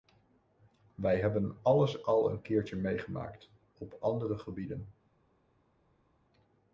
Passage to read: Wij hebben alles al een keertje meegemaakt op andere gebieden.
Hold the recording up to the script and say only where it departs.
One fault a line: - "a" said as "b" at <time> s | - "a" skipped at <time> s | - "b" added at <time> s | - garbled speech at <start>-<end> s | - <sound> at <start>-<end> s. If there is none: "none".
none